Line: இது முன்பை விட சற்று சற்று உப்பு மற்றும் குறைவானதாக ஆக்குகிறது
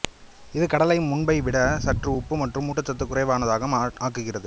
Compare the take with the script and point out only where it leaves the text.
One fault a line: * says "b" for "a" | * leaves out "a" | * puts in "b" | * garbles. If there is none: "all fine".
* puts in "கடலை"
* leaves out "சற்று"
* puts in "ஊட்டச்சத்து"